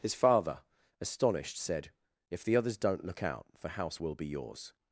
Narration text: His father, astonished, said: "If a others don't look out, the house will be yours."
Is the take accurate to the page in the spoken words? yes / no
no